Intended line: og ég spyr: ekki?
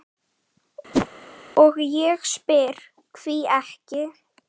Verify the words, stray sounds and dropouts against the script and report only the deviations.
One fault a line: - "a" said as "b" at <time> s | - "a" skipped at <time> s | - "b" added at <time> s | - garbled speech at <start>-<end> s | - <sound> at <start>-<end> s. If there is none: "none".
- whoosh at 0.9-1.1 s
- "hví" added at 3.2 s